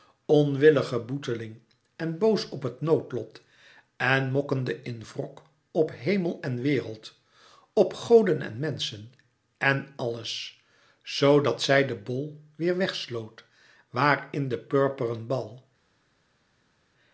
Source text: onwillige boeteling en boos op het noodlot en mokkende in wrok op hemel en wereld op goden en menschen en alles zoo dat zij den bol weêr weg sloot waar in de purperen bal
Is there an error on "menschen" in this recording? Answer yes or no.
no